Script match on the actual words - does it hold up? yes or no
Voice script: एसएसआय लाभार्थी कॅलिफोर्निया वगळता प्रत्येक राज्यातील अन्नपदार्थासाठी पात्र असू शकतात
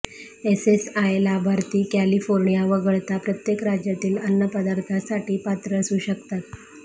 yes